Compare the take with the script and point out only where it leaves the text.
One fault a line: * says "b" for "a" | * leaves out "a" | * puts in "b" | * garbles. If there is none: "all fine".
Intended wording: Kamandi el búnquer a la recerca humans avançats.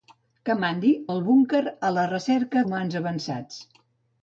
all fine